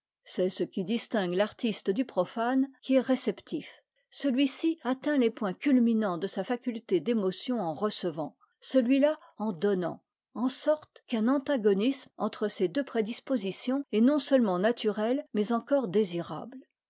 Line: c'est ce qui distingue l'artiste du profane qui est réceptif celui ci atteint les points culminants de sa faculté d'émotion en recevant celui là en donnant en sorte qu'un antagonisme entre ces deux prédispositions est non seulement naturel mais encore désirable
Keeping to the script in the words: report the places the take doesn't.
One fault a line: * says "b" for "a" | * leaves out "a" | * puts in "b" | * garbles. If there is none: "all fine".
all fine